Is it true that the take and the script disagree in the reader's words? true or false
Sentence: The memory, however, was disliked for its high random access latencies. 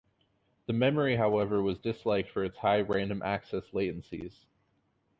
false